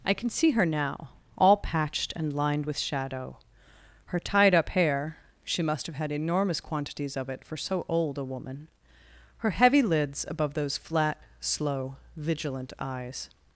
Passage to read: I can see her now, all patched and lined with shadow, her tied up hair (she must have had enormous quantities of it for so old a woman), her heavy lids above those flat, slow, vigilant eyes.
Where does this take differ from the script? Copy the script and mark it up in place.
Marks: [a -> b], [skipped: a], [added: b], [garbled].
I can see her now, all patched and lined with shadow, her tied up hair (she must have had enormous quantities of it for so old a woman), her heavy lids above those flat, slow, vigilant eyes.